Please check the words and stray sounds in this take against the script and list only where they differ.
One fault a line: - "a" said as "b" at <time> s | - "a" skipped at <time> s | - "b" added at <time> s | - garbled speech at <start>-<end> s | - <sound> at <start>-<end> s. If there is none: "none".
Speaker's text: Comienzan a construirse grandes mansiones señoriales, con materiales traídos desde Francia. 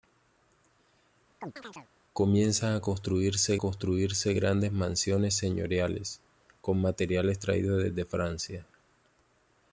- chirp at 1.4-1.9 s
- "construirse" added at 3.6 s